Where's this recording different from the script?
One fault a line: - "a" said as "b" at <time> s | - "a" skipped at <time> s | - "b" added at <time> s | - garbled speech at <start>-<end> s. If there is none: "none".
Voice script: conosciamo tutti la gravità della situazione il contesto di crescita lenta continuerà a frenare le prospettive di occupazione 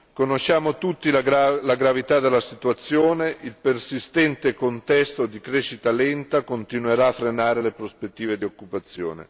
- "persistente" added at 3.6 s